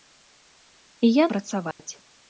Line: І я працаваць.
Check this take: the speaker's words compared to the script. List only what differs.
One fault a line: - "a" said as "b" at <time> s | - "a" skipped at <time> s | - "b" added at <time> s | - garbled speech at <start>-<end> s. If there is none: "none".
none